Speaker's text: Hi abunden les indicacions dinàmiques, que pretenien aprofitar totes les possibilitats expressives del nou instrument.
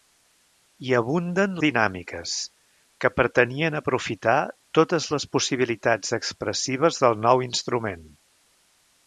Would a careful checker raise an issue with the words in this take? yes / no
yes